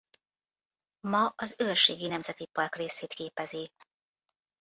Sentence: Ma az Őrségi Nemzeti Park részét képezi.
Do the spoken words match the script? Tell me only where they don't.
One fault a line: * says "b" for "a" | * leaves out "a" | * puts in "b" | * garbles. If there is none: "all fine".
all fine